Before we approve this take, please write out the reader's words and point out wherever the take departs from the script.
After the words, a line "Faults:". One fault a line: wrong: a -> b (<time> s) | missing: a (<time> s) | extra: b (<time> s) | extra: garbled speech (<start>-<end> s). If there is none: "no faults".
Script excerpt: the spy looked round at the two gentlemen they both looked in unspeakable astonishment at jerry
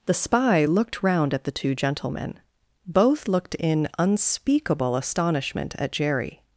the spy looked round at the two gentlemen both looked in unspeakable astonishment at jerry
Faults:
missing: they (2.4 s)